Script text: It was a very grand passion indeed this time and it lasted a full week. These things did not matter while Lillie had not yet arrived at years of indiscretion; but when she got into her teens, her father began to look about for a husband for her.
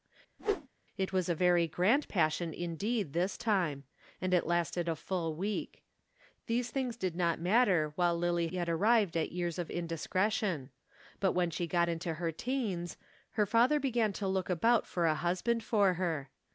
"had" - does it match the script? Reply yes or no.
no